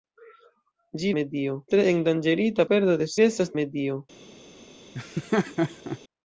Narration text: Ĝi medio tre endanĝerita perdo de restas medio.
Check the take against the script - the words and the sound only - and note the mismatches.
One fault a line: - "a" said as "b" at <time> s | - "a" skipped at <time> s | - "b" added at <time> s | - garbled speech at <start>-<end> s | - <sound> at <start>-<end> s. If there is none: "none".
- laugh at 4.9-6.0 s